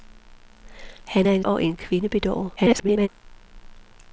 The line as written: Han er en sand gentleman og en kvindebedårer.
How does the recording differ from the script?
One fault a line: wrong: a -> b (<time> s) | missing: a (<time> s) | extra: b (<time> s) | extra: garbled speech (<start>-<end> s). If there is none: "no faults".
missing: sand gentleman (1.4 s)
extra: garbled speech (2.6-3.1 s)